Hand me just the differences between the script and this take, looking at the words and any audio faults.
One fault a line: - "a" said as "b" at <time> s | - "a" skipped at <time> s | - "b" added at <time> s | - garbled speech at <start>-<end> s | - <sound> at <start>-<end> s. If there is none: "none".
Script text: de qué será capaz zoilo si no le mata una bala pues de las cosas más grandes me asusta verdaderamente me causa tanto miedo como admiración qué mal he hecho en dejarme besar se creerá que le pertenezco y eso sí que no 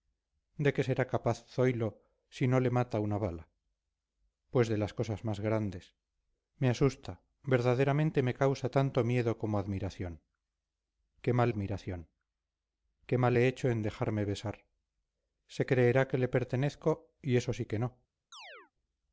- "admiración qué mal" added at 11.5 s
- chirp at 18.3-18.7 s